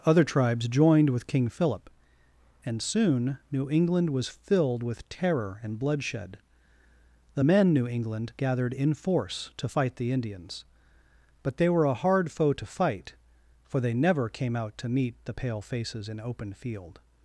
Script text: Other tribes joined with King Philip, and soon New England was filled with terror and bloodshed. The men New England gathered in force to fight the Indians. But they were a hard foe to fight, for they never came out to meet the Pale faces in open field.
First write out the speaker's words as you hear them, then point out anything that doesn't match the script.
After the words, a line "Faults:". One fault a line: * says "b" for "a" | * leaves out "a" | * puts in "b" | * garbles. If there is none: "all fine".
Other tribes joined with King Philip, and soon New England was filled with terror and bloodshed. The men New England gathered in force to fight the Indians. But they were a hard foe to fight, for they never came out to meet the Pale faces in open field.
Faults:
all fine